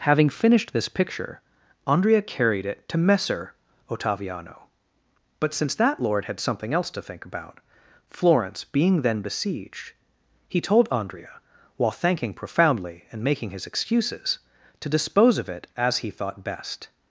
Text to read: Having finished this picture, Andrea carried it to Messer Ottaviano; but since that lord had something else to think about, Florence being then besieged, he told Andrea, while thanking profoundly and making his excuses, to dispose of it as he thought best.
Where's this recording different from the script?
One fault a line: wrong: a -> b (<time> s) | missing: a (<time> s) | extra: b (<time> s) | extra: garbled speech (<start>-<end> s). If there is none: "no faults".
no faults